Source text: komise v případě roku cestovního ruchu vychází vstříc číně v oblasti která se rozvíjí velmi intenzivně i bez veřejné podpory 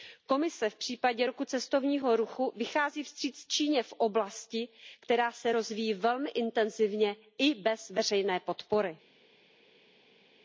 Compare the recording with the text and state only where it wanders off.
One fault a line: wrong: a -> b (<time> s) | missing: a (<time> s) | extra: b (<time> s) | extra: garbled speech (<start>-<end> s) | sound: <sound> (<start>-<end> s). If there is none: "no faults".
no faults